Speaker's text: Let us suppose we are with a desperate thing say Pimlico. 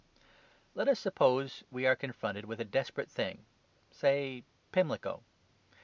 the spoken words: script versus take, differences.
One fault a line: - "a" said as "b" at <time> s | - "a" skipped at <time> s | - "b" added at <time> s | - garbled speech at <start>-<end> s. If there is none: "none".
- "confronted" added at 1.9 s